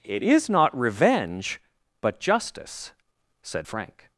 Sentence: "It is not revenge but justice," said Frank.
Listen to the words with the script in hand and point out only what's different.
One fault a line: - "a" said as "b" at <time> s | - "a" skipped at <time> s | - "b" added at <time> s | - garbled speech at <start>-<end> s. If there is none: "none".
none